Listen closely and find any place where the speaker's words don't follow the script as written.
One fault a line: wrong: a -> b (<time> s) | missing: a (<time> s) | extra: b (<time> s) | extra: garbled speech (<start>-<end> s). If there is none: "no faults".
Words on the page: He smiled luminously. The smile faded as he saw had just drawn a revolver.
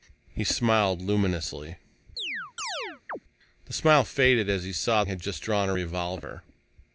no faults